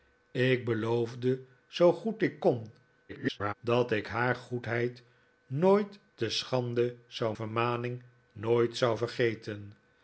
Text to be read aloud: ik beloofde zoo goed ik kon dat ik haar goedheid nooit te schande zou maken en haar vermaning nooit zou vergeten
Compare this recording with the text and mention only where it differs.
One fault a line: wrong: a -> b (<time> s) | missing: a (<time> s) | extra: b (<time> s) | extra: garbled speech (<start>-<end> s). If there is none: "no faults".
extra: garbled speech (3.1-3.5 s)
missing: maken en haar (7.4 s)